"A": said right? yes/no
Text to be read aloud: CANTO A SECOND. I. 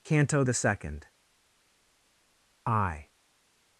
no